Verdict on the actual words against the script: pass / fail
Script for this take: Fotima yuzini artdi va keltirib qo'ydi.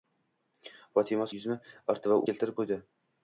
pass